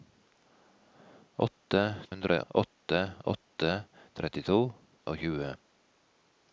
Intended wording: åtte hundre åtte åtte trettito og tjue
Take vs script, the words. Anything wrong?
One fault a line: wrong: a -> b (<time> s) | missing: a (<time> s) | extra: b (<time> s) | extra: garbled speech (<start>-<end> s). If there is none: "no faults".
no faults